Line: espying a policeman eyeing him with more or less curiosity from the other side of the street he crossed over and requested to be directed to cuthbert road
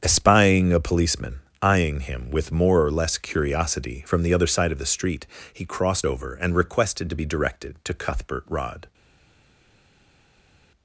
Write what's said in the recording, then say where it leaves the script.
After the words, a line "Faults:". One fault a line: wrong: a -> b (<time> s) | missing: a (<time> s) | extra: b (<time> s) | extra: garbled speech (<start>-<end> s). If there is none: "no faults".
espying a policeman eyeing him with more or less curiosity from the other side of the street he crossed over and requested to be directed to cuthbert rod
Faults:
wrong: road -> rod (8.5 s)